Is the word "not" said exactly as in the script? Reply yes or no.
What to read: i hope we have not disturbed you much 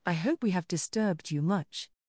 no